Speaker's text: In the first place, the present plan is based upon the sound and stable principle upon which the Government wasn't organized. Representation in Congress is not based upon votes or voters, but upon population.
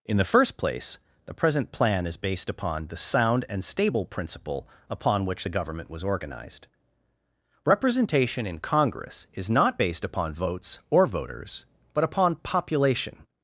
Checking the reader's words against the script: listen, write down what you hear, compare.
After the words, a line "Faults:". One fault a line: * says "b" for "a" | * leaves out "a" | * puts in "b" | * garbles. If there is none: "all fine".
In the first place, the present plan is based upon the sound and stable principle upon which the Government was organized. Representation in Congress is not based upon votes or voters, but upon population.
Faults:
* says "was" for "wasn't"